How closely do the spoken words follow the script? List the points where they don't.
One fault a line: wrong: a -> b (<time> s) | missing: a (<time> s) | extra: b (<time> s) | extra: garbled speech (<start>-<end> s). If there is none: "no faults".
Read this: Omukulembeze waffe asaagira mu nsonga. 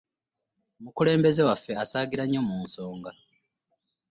extra: nnyo (2.3 s)